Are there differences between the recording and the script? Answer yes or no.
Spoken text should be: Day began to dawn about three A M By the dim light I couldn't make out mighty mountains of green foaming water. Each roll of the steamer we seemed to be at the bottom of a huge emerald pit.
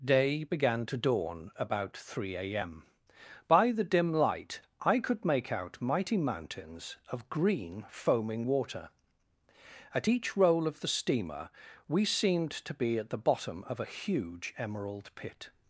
yes